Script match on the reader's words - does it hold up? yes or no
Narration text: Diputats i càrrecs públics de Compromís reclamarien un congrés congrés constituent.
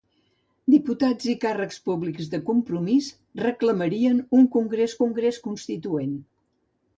yes